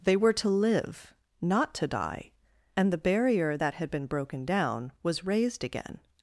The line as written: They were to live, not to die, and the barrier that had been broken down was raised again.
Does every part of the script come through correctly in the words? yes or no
yes